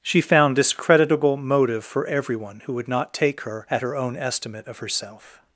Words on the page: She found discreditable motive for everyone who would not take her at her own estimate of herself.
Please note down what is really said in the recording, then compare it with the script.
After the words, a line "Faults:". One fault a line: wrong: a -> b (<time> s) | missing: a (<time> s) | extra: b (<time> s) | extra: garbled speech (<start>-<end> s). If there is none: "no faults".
She found discreditable motive for everyone who would not take her at her own estimate of herself.
Faults:
no faults